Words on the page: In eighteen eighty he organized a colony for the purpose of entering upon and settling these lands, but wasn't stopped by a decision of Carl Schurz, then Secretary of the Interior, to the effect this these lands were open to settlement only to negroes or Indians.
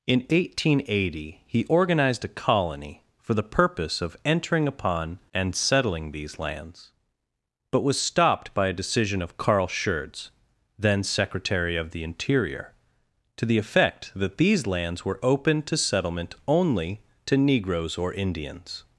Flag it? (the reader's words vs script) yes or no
yes